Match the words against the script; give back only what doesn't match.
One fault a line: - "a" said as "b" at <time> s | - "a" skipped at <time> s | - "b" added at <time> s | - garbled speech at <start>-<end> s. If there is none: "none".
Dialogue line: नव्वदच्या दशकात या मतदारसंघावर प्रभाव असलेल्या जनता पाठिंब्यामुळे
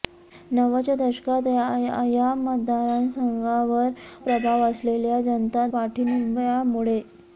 none